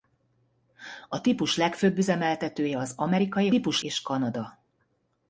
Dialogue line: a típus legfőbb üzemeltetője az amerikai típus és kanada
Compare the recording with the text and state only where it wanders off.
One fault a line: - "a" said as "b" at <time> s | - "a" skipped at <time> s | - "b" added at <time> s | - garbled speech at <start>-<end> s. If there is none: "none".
none